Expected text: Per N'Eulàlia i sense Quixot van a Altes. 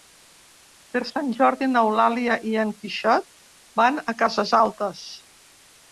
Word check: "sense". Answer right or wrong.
wrong